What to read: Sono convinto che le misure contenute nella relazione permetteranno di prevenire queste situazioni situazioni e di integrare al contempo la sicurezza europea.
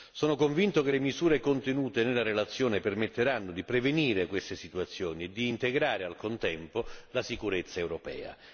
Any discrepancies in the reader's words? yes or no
yes